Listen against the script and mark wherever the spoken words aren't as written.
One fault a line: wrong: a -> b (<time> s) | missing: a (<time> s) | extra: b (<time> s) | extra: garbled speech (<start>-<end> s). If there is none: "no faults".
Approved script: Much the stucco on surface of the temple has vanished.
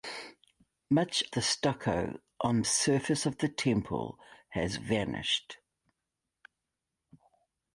no faults